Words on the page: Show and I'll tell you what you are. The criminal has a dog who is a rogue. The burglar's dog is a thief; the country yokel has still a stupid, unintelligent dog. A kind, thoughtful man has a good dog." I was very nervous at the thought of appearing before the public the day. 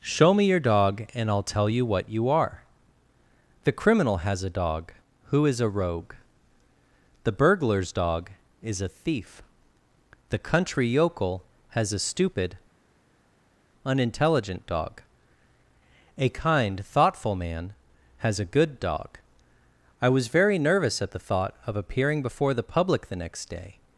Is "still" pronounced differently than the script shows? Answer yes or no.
yes